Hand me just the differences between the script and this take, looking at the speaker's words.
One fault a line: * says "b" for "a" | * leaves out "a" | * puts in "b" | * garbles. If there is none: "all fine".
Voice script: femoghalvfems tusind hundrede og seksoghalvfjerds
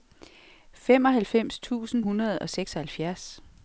all fine